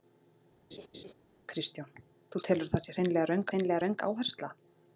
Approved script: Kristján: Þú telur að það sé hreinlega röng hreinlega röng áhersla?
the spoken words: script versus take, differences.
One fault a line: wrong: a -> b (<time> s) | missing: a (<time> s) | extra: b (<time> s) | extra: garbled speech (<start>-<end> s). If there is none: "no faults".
no faults